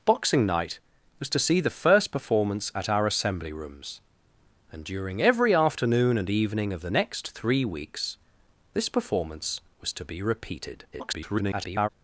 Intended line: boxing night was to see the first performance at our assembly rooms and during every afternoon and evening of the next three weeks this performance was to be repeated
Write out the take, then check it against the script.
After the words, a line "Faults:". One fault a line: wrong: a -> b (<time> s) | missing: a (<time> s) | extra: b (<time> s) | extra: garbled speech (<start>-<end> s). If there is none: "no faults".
boxing night was to see the first performance at our assembly rooms and during every afternoon and evening of the next three weeks this performance was to be repeated [garbled]
Faults:
extra: garbled speech (10.9-11.9 s)